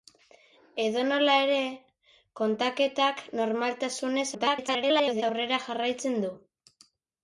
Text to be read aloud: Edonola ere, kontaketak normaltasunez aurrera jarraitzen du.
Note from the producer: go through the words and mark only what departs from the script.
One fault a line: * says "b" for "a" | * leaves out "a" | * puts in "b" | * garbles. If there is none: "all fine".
* garbles